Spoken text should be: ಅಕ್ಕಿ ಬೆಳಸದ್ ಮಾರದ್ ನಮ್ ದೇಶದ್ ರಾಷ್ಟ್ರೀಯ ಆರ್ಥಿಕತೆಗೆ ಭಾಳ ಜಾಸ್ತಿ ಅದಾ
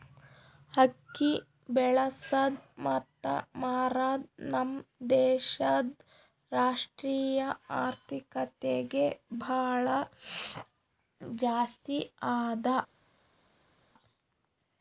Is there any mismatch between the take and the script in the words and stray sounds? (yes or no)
yes